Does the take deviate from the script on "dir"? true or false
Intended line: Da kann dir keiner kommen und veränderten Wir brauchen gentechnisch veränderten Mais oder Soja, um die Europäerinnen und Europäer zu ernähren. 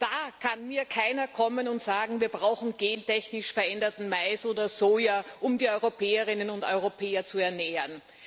true